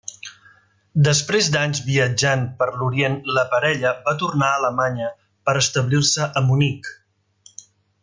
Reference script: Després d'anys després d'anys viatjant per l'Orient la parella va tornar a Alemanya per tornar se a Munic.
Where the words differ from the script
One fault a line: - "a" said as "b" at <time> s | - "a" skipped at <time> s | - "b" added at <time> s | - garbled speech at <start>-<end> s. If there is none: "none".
- "després d'anys" skipped at 1.8 s
- "tornar" said as "establir" at 5.7 s